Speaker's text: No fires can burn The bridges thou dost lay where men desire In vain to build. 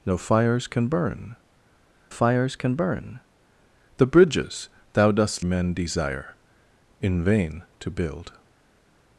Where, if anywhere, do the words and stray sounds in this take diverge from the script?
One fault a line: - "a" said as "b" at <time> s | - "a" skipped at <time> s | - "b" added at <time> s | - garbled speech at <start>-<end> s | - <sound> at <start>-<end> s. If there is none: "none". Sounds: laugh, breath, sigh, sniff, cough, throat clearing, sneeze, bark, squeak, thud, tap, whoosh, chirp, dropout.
- "fires can burn" added at 2.1 s
- "lay where" skipped at 5.5 s